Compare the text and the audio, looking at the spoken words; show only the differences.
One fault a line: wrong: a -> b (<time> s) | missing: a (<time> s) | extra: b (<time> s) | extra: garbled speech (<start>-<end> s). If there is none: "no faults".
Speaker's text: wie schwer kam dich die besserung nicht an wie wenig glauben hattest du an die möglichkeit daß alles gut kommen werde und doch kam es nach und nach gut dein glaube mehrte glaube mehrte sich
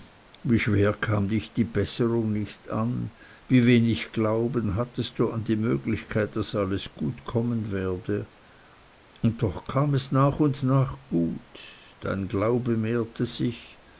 missing: glaube mehrte (13.2 s)